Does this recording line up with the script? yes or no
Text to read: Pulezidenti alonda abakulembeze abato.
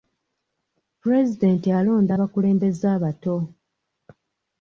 yes